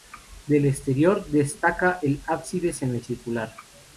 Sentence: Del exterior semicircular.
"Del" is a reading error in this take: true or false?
false